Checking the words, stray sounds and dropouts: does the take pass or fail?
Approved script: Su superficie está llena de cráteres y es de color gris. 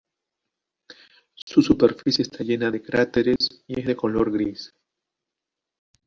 fail